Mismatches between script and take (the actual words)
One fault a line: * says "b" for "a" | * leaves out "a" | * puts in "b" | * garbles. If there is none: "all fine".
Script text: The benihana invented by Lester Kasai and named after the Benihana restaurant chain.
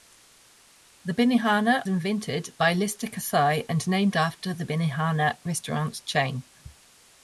all fine